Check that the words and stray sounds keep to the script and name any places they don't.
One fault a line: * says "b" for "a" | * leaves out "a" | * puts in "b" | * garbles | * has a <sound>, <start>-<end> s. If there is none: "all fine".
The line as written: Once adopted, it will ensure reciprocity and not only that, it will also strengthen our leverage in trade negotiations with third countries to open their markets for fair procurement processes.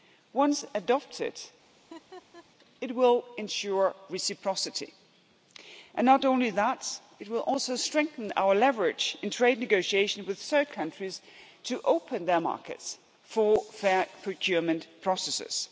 * has a laugh, 1.8-2.5 s